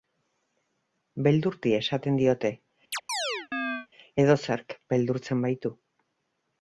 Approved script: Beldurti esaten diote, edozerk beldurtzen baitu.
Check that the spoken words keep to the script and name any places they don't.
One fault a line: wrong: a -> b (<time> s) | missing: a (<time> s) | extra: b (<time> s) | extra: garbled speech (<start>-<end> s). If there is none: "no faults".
no faults